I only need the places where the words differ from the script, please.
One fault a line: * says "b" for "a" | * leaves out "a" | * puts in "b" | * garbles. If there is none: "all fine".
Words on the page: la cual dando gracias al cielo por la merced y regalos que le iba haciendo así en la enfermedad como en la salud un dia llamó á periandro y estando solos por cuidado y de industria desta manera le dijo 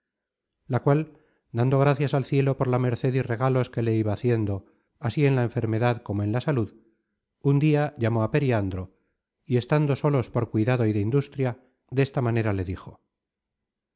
all fine